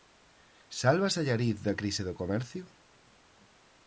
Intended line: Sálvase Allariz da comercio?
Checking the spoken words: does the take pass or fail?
fail